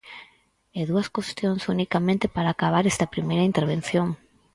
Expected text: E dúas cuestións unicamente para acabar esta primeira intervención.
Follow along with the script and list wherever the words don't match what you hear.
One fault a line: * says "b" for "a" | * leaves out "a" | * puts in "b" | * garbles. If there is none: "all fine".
all fine